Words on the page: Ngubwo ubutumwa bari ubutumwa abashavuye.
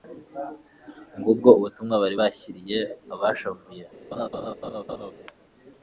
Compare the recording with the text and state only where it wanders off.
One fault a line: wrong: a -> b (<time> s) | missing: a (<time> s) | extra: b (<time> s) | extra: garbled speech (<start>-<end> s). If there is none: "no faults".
wrong: ubutumwa -> bashyiriye (2.2 s)